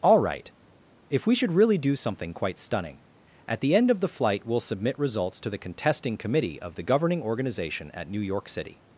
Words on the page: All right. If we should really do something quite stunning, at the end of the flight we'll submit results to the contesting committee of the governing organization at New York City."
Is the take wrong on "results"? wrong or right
right